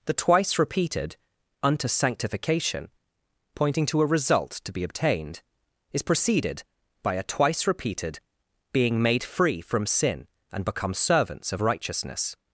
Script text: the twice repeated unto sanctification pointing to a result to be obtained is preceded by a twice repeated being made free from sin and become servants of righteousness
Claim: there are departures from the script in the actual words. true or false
false